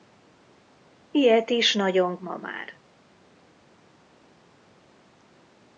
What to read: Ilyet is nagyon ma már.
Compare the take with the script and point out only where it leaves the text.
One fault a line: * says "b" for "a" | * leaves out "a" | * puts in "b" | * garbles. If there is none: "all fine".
all fine